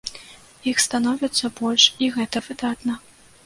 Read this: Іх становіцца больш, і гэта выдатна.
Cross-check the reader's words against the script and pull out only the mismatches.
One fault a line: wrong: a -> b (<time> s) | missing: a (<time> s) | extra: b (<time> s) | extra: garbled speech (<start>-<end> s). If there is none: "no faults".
no faults